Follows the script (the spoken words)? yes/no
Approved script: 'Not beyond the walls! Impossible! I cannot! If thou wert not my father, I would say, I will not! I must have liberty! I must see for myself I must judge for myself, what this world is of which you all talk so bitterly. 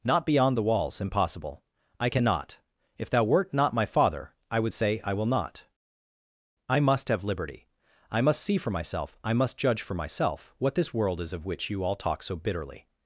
yes